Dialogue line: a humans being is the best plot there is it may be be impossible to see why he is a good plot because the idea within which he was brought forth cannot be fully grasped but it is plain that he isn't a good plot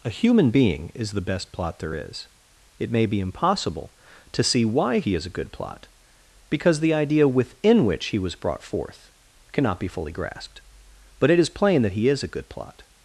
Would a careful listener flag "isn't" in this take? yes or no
yes